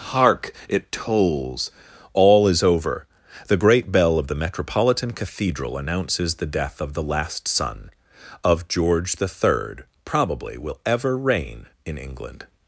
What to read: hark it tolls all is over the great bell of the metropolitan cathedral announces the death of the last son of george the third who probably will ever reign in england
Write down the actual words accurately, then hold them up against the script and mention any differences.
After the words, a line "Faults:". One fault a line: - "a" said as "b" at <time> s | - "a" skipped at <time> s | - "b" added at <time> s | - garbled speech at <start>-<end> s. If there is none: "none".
hark it tolls all is over the great bell of the metropolitan cathedral announces the death of the last son of george the third probably will ever reign in england
Faults:
- "who" skipped at 9.8 s